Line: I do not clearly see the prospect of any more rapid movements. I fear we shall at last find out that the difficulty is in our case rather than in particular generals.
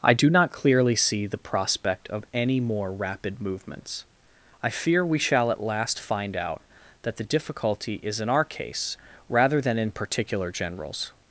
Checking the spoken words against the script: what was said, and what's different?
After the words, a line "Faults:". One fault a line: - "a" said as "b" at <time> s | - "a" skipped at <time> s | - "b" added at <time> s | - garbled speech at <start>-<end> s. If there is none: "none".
I do not clearly see the prospect of any more rapid movements. I fear we shall at last find out that the difficulty is in our case rather than in particular generals.
Faults:
none